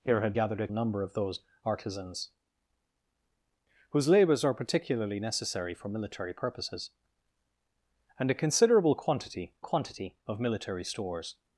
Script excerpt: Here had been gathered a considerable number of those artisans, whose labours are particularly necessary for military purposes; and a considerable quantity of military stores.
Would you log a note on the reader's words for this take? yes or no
yes